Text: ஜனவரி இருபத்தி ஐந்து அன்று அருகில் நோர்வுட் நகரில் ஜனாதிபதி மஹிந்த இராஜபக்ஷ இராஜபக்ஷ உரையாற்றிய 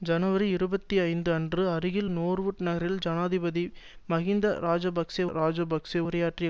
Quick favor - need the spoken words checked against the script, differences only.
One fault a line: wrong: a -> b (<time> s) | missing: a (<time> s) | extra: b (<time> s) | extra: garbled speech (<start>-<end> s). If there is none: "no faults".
no faults